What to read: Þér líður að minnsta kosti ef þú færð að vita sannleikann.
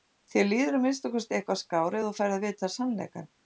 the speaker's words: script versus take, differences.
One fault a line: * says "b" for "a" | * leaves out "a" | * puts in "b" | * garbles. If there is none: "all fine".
* puts in "eitthvað skár"